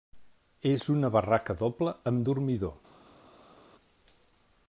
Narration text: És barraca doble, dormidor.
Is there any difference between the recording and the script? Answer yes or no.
yes